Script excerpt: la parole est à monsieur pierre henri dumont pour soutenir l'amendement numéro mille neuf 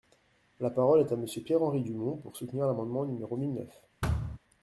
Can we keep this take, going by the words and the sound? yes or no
no